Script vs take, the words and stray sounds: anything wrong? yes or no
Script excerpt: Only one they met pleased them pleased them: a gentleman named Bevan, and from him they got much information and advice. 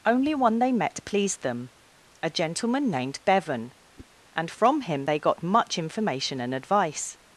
yes